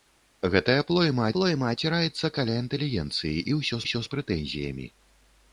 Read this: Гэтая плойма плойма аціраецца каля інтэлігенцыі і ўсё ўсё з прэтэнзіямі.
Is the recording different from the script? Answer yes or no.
no